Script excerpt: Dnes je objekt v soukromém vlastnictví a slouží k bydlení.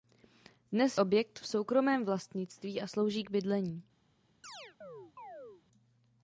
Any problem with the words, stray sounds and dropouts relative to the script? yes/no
yes